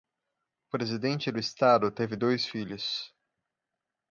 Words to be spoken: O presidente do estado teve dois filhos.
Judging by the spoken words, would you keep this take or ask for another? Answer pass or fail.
pass